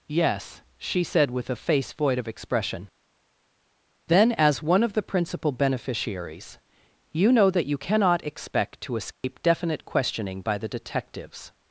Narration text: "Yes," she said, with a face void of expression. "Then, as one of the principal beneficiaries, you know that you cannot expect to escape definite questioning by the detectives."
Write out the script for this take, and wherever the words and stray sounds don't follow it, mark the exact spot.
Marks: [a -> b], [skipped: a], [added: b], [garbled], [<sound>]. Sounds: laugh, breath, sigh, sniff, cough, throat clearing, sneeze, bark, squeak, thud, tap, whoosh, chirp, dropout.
"Yes," she said, with a face void of expression. "Then, as one of the principal beneficiaries, you know that you cannot expect to escape [dropout] definite questioning by the detectives."